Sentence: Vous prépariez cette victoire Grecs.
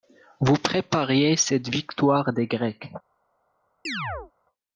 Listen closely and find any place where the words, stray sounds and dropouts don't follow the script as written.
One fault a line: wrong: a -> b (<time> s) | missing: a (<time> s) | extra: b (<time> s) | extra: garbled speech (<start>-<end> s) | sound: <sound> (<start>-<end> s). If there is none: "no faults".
extra: des (2.3 s)
sound: chirp (3.9-4.3 s)